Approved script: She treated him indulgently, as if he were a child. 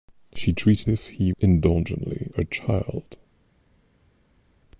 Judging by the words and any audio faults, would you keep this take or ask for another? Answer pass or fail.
fail